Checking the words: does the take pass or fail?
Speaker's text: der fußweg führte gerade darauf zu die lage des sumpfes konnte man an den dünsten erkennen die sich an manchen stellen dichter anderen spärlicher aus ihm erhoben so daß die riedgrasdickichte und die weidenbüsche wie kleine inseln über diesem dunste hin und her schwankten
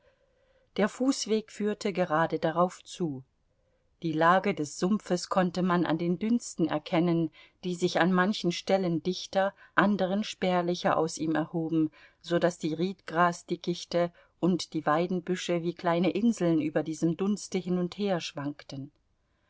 pass